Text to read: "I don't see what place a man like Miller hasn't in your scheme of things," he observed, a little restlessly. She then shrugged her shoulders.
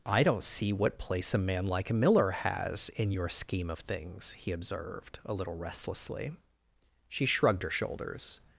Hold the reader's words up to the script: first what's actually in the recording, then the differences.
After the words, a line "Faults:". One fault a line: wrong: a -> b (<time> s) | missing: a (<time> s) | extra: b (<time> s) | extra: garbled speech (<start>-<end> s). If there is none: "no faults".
"I don't see what place a man like Miller has in your scheme of things," he observed, a little restlessly. She shrugged her shoulders.
Faults:
wrong: hasn't -> has (2.3 s)
missing: then (7.3 s)